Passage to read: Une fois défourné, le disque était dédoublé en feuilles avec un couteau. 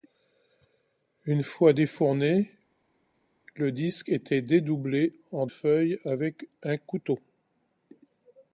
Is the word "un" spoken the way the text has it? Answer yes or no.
yes